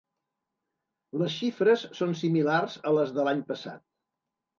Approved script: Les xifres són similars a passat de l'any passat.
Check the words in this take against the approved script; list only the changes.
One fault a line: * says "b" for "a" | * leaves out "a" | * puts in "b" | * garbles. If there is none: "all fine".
* says "les" for "passat"